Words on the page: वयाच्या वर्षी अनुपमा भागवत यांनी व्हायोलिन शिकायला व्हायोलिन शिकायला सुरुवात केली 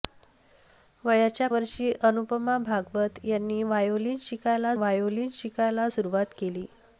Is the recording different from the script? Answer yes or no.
no